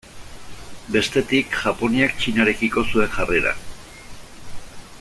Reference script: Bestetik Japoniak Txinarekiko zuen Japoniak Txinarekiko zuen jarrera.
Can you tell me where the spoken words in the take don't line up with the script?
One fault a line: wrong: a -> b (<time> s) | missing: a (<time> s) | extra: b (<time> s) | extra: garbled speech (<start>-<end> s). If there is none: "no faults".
missing: Japoniak Txinarekiko zuen (3.1 s)